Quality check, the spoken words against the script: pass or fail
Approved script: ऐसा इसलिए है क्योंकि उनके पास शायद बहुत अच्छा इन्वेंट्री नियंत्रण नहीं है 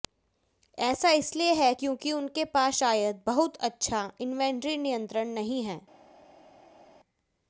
pass